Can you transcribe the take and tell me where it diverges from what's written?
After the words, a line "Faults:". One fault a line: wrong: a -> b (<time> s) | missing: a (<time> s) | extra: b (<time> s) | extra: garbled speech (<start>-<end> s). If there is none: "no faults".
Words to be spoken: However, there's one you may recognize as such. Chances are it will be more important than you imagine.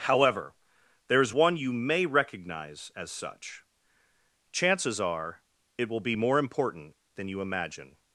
However, there's one you may recognize as such. Chances are it will be more important than you imagine.
Faults:
no faults